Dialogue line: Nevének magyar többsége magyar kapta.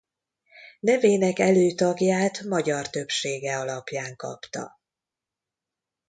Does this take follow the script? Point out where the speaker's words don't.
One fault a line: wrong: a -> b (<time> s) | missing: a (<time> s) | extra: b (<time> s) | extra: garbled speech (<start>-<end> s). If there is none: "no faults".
extra: előtagját (1.4 s)
wrong: magyar -> alapján (3.6 s)